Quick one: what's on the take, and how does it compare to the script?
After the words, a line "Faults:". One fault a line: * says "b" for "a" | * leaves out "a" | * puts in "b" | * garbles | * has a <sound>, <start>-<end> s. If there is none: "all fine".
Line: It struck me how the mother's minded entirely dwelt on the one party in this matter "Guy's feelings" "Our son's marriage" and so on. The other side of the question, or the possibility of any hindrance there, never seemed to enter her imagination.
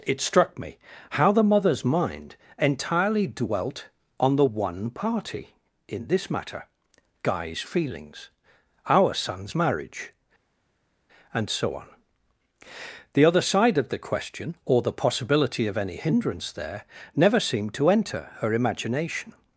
It struck me how the mother's mind entirely dwelt on the one party in this matter "Guy's feelings" "Our son's marriage" and so on. The other side of the question, or the possibility of any hindrance there, never seemed to enter her imagination.
Faults:
* says "mind" for "minded"